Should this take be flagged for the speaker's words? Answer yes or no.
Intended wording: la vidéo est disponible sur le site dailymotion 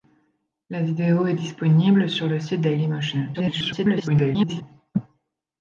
yes